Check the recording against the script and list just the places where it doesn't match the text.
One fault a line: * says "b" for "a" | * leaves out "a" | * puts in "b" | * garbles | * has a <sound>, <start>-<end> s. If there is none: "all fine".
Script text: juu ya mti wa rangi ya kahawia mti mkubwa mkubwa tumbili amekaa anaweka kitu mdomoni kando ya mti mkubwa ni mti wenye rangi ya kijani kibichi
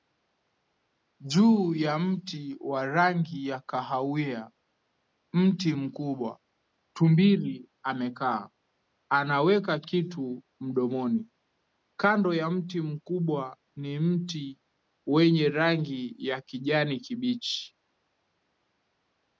* leaves out "mkubwa"